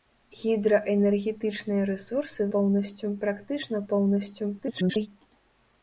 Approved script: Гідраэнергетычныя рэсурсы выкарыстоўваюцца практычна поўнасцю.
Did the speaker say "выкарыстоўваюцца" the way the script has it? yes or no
no